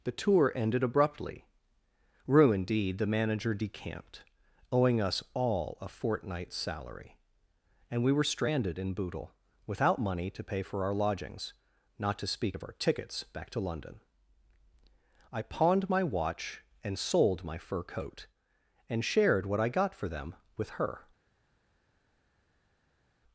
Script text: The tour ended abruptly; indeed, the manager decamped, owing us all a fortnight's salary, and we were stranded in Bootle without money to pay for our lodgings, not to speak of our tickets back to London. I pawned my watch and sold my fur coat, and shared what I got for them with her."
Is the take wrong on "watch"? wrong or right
right